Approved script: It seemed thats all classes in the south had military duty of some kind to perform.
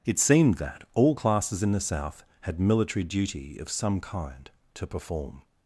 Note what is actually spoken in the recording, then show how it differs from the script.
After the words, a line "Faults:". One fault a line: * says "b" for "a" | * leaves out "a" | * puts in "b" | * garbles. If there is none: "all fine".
It seemed that all classes in the south had military duty of some kind to perform.
Faults:
* says "that" for "thats"